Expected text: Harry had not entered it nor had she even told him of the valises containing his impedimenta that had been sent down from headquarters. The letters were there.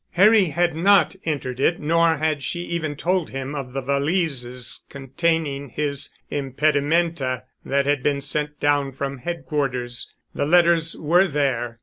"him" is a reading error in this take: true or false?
false